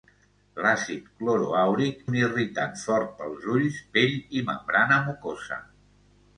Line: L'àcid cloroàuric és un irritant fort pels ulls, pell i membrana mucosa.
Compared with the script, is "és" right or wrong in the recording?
wrong